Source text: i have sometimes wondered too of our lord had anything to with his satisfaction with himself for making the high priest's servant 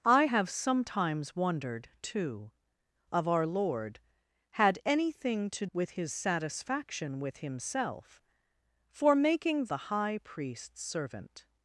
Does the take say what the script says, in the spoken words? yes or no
yes